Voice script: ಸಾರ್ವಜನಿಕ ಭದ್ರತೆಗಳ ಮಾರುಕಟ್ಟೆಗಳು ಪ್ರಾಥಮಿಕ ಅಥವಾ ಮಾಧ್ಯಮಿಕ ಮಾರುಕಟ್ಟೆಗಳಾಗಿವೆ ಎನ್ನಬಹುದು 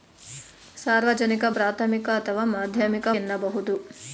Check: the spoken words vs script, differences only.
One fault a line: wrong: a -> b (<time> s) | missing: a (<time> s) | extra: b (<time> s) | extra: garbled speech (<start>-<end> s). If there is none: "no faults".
missing: ಭದ್ರತೆಗಳ ಮಾರುಕಟ್ಟೆಗಳು (1.4 s)
missing: ಮಾರುಕಟ್ಟೆಗಳಾಗಿವೆ (3.1 s)